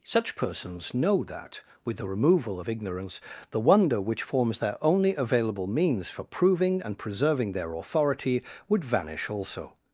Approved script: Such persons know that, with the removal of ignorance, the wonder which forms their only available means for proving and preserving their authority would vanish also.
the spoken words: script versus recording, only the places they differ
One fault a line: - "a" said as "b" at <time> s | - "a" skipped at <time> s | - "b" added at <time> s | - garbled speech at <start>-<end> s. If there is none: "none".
none